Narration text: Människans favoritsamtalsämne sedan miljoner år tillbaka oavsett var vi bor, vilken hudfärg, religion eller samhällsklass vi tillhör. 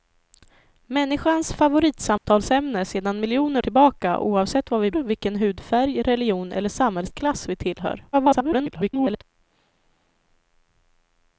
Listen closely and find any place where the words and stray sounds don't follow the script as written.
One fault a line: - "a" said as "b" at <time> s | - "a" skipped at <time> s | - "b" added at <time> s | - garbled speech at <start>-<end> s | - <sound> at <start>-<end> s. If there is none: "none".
- dropout at 2.2-2.3 s
- "år" skipped at 3.6 s
- "bor" skipped at 4.9 s
- garbled speech at 8.1-9.2 s